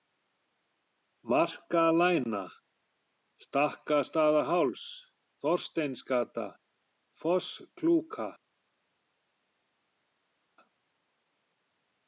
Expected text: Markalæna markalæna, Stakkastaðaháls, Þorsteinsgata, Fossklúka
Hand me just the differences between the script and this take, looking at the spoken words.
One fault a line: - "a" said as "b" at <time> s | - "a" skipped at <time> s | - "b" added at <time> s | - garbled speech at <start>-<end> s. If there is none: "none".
- "markalæna" skipped at 2.4 s